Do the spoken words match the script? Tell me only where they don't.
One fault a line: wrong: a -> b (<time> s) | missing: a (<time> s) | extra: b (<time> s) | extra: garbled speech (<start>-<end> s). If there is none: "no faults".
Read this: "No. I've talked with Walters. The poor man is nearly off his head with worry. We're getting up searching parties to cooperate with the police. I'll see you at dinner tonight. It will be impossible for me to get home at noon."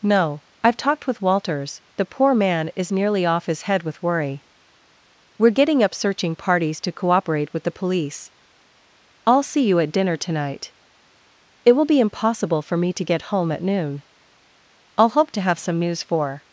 extra: I'll hope to have some news for (15.0 s)